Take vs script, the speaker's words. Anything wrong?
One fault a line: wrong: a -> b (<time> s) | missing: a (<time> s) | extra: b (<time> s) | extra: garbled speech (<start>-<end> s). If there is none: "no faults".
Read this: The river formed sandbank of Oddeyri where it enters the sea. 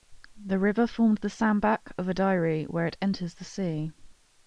extra: the (1.2 s)